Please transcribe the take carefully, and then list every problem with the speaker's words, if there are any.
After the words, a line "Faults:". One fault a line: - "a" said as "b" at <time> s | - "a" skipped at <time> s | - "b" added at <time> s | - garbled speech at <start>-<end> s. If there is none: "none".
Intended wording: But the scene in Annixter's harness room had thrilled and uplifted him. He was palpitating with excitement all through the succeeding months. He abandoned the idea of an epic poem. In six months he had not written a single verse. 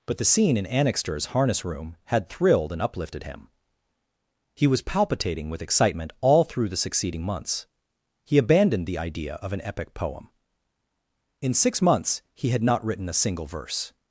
But the scene in Annixter's harness room had thrilled and uplifted him. He was palpitating with excitement all through the succeeding months. He abandoned the idea of an epic poem. In six months he had not written a single verse.
Faults:
none